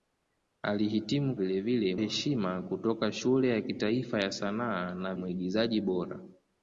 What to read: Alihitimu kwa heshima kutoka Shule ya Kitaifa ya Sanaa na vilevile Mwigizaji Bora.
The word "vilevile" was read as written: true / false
false